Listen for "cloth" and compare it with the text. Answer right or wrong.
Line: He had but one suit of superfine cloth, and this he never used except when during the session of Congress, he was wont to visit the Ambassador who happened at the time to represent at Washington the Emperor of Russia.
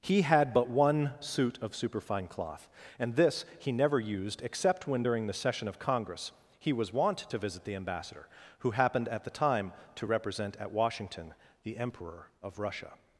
right